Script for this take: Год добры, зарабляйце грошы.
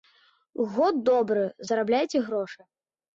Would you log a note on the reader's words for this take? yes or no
no